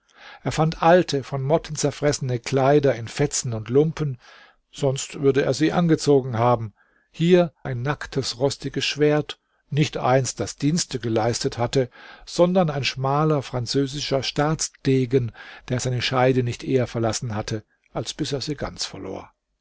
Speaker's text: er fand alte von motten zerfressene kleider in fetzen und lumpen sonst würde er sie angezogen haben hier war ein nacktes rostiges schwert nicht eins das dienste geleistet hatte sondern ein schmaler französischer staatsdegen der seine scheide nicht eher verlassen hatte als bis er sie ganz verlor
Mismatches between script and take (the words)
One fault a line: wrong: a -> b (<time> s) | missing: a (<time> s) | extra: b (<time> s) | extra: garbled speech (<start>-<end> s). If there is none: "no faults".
missing: war (7.5 s)